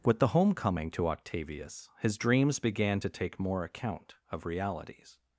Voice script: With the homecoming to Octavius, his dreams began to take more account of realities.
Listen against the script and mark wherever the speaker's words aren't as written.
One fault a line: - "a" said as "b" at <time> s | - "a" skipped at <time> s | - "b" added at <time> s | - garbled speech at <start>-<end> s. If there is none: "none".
none